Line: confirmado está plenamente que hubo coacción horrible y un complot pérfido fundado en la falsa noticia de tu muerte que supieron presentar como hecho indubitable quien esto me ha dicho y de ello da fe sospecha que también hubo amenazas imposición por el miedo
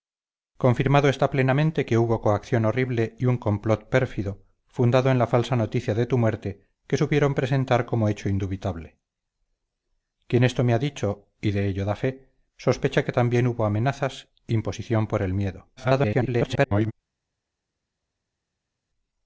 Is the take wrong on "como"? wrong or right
right